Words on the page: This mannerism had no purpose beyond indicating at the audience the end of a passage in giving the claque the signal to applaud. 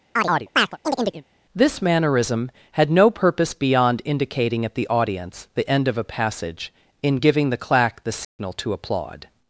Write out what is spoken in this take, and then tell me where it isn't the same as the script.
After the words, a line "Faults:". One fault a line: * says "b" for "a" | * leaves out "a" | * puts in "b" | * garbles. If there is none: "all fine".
This mannerism had no purpose beyond indicating at the audience the end of a passage in giving the claque the signal to applaud.
Faults:
all fine